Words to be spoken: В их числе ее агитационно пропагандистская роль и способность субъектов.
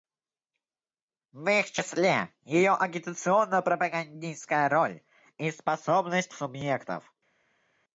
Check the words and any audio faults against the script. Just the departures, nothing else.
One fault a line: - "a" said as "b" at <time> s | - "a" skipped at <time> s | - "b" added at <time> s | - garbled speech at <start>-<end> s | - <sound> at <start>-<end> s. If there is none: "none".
none